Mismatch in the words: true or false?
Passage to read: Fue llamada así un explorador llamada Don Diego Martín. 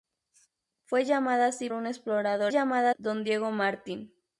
false